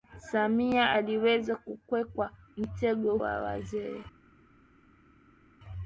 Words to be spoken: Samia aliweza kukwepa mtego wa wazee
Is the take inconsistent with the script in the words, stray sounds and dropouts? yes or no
no